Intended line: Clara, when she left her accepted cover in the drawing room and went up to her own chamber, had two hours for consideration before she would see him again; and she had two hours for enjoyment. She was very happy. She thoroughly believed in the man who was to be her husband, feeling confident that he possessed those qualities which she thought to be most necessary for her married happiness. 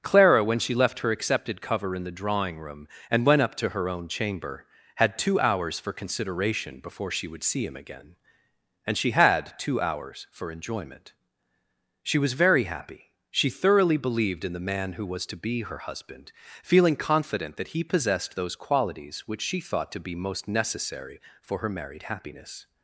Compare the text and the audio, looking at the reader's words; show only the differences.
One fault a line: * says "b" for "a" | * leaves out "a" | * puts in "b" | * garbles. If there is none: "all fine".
all fine